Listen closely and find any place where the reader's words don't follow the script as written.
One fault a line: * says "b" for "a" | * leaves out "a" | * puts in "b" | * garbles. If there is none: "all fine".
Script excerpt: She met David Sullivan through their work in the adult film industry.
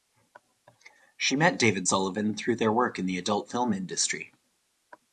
all fine